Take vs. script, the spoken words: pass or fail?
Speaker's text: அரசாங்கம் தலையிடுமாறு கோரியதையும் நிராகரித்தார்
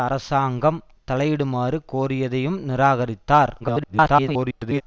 fail